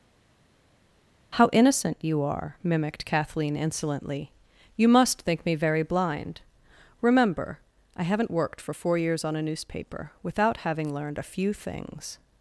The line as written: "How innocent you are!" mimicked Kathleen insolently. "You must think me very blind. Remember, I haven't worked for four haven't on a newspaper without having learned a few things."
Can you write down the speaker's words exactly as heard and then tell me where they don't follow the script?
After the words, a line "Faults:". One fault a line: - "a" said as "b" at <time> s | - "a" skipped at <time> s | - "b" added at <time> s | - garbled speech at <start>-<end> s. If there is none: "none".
"How innocent you are!" mimicked Kathleen insolently. "You must think me very blind. Remember, I haven't worked for four years on a newspaper without having learned a few things."
Faults:
- "haven't" said as "years" at 9.0 s